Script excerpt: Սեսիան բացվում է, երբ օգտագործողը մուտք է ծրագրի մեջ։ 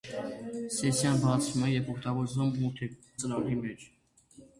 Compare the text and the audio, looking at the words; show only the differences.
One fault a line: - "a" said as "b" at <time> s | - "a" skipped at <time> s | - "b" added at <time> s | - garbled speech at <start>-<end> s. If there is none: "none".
none